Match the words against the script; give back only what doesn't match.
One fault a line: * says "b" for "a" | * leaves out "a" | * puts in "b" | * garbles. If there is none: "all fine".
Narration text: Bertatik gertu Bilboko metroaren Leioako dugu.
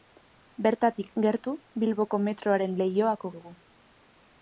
all fine